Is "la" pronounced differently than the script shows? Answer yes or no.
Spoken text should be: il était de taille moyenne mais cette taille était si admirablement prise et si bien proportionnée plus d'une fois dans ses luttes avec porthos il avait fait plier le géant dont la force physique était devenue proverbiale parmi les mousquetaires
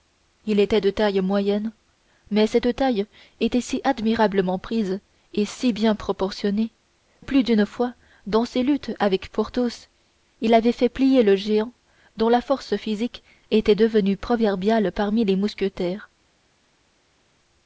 no